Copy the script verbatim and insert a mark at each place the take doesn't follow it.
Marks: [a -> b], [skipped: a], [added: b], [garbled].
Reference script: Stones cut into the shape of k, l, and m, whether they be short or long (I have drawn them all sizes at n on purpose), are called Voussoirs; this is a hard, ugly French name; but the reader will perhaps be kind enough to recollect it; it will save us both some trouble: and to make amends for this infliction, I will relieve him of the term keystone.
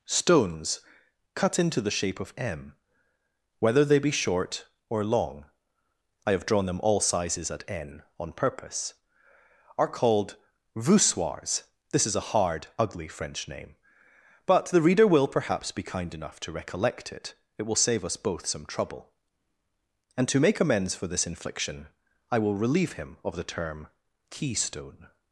Stones cut into the shape of [skipped: k, l, and] m, whether they be short or long (I have drawn them all sizes at n on purpose), are called Voussoirs; this is a hard, ugly French name; but the reader will perhaps be kind enough to recollect it; it will save us both some trouble: and to make amends for this infliction, I will relieve him of the term keystone.